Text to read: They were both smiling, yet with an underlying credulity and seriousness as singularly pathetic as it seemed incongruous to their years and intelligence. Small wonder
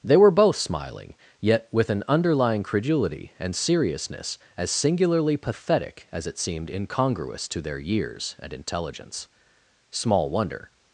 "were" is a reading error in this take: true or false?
false